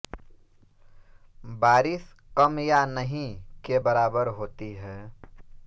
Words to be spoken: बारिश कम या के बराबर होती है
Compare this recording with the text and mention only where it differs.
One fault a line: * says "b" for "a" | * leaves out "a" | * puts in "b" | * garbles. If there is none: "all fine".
* puts in "नहीं"